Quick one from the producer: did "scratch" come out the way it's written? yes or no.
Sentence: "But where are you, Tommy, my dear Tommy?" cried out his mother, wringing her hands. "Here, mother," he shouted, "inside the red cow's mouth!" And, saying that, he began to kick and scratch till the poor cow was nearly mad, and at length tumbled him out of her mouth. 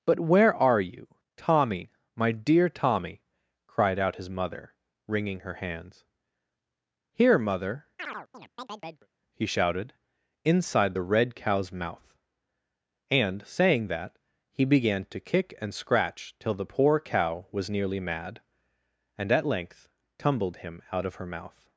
yes